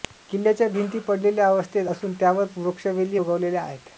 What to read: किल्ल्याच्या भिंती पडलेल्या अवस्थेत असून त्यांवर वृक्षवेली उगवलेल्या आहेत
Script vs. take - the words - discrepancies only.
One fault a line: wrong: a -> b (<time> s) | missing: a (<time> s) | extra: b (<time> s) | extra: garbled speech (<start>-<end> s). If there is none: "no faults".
no faults